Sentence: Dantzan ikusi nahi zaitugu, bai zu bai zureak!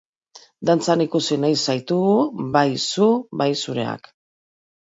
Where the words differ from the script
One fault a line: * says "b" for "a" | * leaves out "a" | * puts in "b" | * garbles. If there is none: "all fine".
all fine